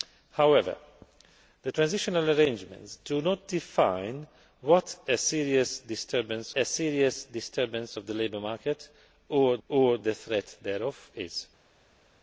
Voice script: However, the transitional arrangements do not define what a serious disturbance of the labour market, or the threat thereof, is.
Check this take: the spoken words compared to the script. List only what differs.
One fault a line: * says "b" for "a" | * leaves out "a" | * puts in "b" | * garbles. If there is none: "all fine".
* puts in "a serious disturbance"
* puts in "or"